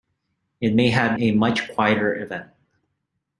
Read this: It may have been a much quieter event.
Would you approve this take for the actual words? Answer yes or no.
no